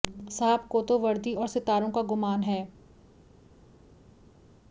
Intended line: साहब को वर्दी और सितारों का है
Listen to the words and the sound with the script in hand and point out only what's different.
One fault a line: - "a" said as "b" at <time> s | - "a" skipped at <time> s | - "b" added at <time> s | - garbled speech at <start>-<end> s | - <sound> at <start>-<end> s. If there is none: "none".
- "तो" added at 0.8 s
- "गुमान" added at 2.0 s